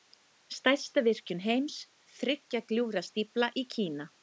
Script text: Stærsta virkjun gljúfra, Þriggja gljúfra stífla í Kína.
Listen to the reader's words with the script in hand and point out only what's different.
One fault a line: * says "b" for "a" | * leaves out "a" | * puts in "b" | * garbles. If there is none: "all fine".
* says "heims" for "gljúfra"